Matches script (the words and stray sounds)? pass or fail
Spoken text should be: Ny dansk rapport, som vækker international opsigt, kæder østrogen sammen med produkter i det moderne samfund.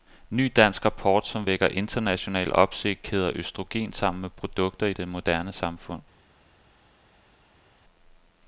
pass